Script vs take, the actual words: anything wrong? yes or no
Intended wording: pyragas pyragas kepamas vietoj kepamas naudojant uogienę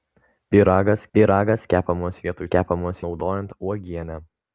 no